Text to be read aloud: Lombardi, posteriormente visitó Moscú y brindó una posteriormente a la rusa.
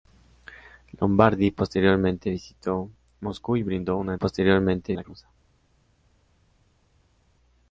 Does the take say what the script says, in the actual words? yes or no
yes